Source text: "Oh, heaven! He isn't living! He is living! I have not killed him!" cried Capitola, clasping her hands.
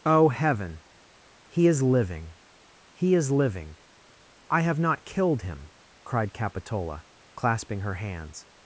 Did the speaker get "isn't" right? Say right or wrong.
wrong